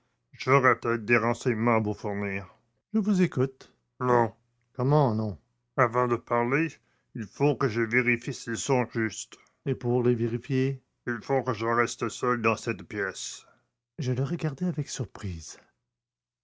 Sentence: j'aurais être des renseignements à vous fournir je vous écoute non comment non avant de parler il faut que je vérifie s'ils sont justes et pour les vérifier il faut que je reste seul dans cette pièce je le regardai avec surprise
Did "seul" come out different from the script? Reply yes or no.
no